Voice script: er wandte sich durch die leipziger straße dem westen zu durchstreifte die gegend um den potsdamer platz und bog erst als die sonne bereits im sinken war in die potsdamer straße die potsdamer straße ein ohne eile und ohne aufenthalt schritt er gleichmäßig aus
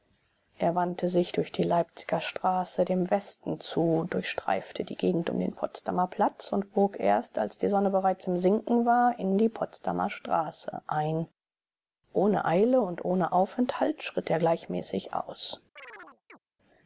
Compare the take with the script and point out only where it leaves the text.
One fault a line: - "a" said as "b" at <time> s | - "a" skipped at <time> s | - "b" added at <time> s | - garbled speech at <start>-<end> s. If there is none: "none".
- "die potsdamer straße" skipped at 10.8 s